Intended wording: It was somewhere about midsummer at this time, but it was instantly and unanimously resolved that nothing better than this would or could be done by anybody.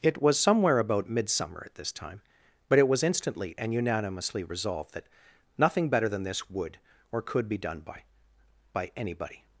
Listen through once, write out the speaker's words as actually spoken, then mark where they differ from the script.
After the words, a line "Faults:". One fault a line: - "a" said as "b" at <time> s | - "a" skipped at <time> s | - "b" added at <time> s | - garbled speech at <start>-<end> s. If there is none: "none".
It was somewhere about midsummer at this time, but it was instantly and unanimously resolved that nothing better than this would or could be done by by anybody.
Faults:
- "by" added at 8.7 s